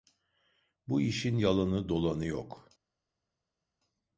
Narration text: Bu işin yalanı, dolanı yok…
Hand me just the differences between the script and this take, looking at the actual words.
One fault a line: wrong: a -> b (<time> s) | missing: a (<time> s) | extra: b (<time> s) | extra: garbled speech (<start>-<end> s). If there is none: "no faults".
no faults